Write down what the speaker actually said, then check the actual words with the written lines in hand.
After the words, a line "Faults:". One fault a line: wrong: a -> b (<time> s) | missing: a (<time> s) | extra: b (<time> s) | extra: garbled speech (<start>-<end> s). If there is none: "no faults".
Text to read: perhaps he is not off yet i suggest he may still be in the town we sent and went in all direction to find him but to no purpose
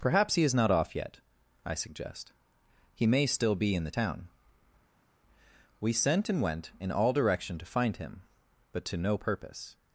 perhaps he is not off yet i suggest he may still be in the town we sent and went in all direction to find him but to no purpose
Faults:
no faults